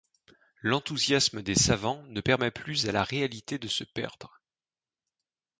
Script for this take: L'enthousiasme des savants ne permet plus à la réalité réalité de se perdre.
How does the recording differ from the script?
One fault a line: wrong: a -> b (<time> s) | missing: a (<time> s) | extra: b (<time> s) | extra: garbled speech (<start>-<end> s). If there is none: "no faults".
missing: réalité (3.6 s)